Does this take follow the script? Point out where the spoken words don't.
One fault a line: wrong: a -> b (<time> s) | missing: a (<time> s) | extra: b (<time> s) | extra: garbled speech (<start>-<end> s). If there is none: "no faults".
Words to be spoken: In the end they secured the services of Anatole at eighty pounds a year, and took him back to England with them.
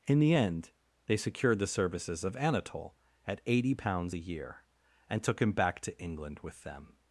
no faults